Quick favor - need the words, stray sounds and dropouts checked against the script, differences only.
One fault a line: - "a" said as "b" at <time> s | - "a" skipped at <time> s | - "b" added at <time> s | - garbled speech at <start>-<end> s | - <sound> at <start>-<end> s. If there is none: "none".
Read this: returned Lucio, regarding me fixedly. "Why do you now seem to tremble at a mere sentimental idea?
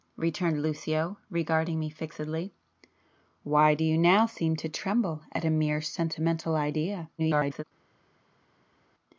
- garbled speech at 7.2-7.6 s